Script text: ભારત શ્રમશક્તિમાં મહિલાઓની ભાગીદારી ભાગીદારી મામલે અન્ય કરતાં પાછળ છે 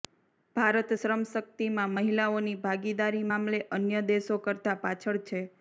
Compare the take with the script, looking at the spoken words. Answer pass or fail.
fail